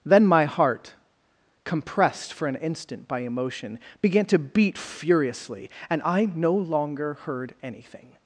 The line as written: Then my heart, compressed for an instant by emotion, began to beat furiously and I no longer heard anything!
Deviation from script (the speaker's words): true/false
false